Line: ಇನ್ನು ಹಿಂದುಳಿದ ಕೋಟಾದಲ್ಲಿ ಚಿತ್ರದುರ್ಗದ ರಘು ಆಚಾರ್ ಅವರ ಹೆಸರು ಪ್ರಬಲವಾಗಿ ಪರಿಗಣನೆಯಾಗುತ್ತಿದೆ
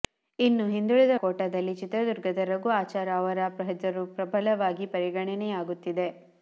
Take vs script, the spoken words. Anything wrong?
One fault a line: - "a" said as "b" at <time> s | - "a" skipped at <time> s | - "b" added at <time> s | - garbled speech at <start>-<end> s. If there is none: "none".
none